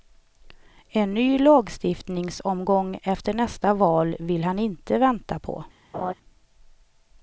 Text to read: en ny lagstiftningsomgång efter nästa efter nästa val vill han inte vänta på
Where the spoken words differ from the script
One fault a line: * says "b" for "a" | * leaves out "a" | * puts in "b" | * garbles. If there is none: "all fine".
* leaves out "efter nästa"